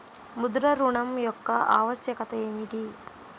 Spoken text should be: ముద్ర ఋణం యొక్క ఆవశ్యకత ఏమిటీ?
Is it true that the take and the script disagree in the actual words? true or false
false